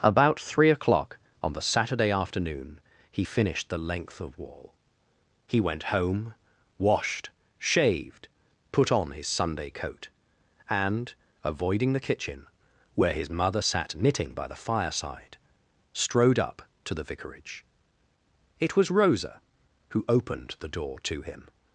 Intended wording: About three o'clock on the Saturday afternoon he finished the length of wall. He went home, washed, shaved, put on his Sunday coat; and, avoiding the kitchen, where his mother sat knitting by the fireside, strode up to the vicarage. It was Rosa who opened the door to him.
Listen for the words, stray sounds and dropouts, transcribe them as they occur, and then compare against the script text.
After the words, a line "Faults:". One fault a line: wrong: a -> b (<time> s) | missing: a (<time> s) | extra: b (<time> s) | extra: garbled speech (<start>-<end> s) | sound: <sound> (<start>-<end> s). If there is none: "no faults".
About three o'clock on the Saturday afternoon he finished the length of wall. He went home, washed, shaved, put on his Sunday coat; and, avoiding the kitchen, where his mother sat knitting by the fireside, strode up to the vicarage. It was Rosa who opened the door to him.
Faults:
no faults